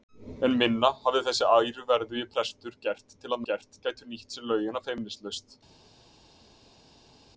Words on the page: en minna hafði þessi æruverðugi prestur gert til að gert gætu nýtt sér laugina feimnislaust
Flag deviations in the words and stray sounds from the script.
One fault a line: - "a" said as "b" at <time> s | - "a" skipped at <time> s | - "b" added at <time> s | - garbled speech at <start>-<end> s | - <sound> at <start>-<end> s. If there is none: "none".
none